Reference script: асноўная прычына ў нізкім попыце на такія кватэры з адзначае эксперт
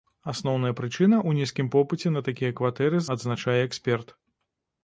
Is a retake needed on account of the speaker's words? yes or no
no